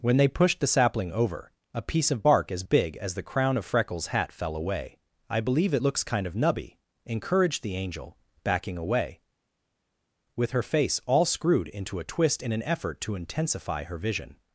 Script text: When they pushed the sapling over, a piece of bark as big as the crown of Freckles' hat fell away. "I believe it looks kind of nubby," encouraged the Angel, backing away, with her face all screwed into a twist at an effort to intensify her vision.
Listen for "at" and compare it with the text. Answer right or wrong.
wrong